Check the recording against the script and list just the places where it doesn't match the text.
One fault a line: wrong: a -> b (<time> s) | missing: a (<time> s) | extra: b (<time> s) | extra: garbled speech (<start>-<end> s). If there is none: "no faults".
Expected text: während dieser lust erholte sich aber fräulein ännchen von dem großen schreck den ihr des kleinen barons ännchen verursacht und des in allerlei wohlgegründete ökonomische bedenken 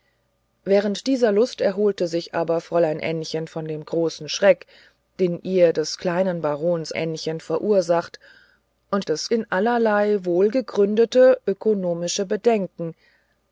no faults